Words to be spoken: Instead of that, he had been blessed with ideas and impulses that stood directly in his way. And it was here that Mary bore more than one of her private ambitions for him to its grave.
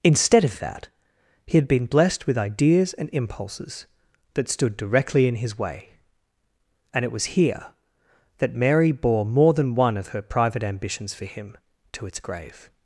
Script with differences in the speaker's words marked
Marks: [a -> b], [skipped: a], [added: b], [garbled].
Instead of that, he had been blessed with ideas and impulses that stood directly in his way. And it was here that Mary bore more than one of her private ambitions for him to its grave.